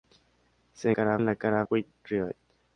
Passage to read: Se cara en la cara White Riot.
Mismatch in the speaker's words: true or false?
false